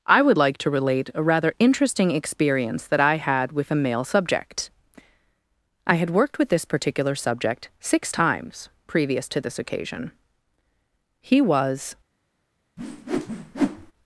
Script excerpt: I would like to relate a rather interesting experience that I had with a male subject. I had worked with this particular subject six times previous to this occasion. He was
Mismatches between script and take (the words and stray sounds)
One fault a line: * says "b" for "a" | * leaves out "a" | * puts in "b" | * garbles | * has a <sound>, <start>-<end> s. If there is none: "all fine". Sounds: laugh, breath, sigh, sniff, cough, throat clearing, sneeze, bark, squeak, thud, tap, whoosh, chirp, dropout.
* has a whoosh, 12.8-13.9 s